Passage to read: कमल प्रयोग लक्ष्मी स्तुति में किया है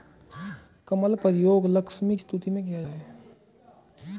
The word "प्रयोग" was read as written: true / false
true